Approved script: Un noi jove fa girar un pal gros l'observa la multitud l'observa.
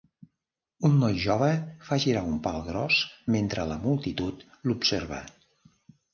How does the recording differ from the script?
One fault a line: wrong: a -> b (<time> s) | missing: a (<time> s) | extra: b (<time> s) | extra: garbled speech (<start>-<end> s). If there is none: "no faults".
wrong: l'observa -> mentre (3.3 s)